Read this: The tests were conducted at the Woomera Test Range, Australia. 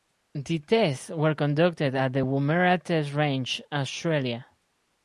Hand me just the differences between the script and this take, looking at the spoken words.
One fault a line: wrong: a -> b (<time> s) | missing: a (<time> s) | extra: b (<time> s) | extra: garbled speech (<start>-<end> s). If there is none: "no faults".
no faults